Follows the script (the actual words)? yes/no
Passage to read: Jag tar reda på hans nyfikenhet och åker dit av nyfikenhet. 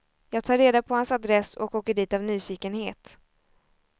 no